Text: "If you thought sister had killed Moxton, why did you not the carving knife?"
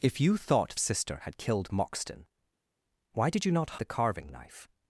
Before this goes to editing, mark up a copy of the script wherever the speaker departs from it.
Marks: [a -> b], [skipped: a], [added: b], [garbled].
"If you thought sister had killed Moxton, why did you not the carving knife?"